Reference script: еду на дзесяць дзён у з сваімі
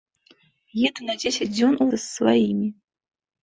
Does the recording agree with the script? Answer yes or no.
yes